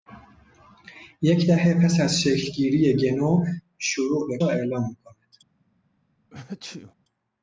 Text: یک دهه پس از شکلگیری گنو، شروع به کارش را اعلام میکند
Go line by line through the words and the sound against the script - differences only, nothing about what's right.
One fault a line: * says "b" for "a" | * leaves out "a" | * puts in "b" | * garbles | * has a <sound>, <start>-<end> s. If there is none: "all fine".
* leaves out "کارش"
* has a sneeze, 6.3-6.9 s